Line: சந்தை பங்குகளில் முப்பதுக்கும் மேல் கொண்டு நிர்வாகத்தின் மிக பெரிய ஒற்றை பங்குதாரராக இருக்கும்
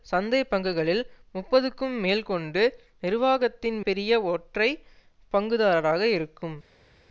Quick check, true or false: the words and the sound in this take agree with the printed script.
false